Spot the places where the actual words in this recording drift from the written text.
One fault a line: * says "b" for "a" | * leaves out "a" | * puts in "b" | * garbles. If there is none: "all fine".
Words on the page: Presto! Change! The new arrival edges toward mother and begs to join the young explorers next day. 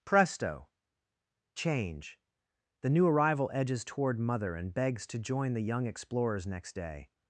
all fine